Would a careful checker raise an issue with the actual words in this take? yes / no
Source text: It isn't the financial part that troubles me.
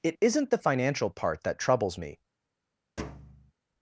no